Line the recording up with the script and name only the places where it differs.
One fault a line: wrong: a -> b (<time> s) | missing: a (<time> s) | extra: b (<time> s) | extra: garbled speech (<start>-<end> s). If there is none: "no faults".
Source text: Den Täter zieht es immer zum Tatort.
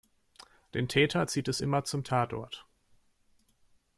no faults